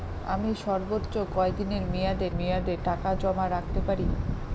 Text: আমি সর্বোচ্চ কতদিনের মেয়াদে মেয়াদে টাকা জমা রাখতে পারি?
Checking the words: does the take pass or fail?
pass